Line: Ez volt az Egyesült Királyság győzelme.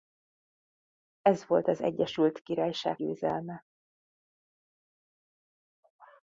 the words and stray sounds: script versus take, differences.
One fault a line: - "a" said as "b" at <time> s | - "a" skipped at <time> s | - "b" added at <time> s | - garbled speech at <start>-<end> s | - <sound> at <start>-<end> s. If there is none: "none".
none